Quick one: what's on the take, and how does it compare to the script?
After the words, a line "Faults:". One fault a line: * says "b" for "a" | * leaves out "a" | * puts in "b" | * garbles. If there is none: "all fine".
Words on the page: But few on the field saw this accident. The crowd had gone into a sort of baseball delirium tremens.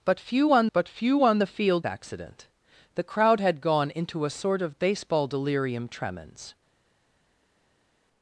But few on but few on the field accident. The crowd had gone into a sort of baseball delirium tremens.
Faults:
* puts in "but few on"
* leaves out "saw this"